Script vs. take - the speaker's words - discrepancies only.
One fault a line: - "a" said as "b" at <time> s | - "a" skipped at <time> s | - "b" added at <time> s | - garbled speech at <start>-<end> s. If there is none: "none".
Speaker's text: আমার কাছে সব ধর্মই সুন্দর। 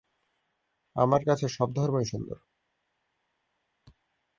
none